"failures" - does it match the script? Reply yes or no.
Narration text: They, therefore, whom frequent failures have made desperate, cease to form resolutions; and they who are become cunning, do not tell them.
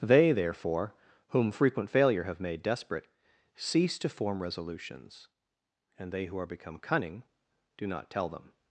no